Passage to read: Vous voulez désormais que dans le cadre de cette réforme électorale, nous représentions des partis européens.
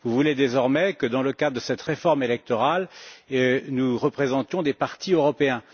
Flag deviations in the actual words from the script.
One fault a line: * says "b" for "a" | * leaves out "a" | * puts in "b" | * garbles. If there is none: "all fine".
all fine